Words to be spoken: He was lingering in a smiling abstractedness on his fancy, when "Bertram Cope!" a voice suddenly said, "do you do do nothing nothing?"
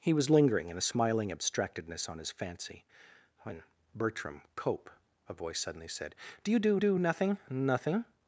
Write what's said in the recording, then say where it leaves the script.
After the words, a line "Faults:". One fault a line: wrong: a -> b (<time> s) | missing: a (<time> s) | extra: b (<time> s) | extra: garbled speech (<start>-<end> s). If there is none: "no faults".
He was lingering in a smiling abstractedness on his fancy, when "Bertram Cope!" a voice suddenly said, "do you do do nothing nothing?"
Faults:
no faults